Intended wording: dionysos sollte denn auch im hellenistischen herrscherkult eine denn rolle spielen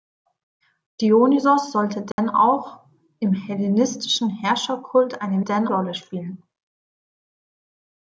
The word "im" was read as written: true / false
true